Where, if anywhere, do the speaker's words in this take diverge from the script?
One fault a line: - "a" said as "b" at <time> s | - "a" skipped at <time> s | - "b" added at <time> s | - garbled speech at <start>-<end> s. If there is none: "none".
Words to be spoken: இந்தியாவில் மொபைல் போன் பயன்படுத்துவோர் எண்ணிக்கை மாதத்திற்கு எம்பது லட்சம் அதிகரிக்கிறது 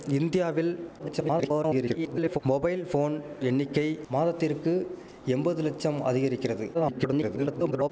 - garbled speech at 1.0-2.4 s
- "பயன்படுத்துவோர்" skipped at 3.1 s
- garbled speech at 6.7-7.9 s